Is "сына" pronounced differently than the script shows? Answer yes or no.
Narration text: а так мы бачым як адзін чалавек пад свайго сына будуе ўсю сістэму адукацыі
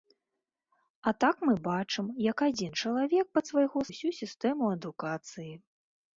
yes